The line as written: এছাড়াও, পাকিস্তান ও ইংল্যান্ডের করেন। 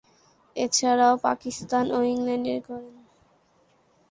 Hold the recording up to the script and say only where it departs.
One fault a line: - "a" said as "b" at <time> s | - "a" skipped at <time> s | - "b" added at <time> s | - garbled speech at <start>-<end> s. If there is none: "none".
none